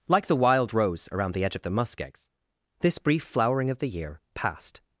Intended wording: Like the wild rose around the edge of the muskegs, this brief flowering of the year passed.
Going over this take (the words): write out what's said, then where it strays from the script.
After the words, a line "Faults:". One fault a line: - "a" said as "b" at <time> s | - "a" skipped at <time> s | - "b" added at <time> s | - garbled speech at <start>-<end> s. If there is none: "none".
Like the wild rose around the edge of the muskegs, this brief flowering of the year passed.
Faults:
none